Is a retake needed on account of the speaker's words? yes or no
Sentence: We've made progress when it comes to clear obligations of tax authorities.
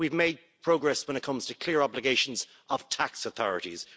no